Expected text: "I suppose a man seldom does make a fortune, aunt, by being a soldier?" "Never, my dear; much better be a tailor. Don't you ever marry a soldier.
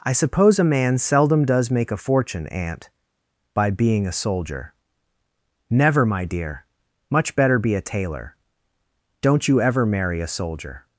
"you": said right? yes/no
yes